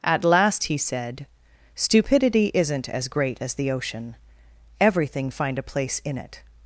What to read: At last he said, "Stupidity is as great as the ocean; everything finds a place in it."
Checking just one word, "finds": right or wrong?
wrong